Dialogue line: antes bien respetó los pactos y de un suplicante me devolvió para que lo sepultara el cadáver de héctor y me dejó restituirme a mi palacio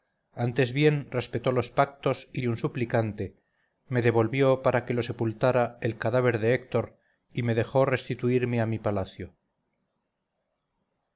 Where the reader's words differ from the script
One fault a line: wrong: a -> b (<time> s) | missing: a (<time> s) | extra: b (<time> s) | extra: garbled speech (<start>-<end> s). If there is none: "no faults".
no faults